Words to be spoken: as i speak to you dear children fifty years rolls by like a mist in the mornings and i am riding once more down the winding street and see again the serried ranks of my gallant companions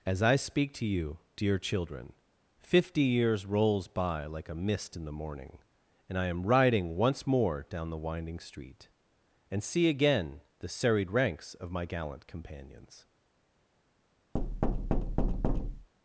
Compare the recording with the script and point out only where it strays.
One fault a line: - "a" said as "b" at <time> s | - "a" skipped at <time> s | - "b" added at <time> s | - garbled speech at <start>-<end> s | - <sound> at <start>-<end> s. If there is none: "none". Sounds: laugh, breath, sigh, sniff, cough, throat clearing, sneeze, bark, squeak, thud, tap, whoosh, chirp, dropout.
- "mornings" said as "morning" at 5.1 s
- thud at 14.3-15.9 s